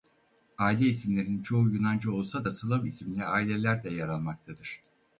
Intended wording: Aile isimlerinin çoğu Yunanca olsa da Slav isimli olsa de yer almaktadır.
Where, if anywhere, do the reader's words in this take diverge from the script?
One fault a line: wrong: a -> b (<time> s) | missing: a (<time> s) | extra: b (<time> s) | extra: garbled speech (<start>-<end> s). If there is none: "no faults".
wrong: olsa -> aileler (3.2 s)